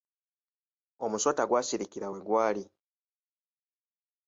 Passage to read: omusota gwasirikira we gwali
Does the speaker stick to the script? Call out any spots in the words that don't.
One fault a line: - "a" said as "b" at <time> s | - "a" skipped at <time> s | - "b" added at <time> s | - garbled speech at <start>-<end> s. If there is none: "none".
none